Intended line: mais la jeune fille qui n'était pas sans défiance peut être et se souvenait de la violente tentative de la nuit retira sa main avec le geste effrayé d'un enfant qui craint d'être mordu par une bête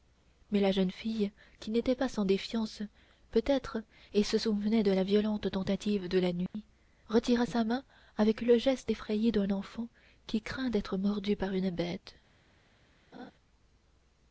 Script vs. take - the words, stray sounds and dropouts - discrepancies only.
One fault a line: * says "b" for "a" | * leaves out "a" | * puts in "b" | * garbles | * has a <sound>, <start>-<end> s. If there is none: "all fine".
* has a dropout, 6.5-6.5 s
* has a laugh, 13.1-13.3 s